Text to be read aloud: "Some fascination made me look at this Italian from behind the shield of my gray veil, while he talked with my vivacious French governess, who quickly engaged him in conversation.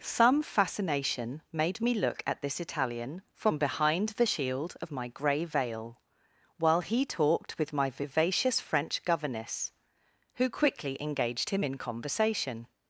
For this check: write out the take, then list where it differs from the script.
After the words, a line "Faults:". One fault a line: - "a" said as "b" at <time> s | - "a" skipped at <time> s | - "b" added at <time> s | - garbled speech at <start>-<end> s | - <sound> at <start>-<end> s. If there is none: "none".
"Some fascination made me look at this Italian from behind the shield of my gray veil, while he talked with my vivacious French governess, who quickly engaged him in conversation.
Faults:
none